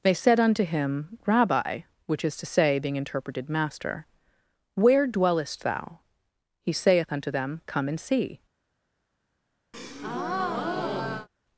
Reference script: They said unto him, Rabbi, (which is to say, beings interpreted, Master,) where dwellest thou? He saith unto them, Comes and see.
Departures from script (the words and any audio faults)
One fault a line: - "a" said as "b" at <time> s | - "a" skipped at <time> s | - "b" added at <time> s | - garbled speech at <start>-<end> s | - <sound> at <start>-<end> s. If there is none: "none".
- "beings" said as "being" at 2.8 s
- "Comes" said as "Come" at 7.7 s
- breath at 9.7-11.3 s